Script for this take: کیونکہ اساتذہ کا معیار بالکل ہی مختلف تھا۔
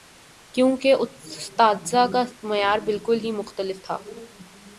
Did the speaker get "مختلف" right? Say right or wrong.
right